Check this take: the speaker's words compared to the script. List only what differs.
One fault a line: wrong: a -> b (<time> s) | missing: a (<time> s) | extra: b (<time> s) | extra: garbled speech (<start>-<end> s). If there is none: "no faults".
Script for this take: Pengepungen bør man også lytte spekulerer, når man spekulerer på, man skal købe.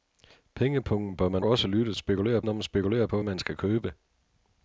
no faults